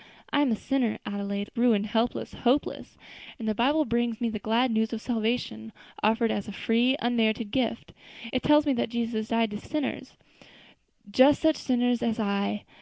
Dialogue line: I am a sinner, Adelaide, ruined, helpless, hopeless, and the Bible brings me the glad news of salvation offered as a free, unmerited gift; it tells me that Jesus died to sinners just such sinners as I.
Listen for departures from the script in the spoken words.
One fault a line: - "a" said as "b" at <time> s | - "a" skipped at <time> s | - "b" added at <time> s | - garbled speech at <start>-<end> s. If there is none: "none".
none